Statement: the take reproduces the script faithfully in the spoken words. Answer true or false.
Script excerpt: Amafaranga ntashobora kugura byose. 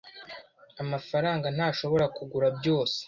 true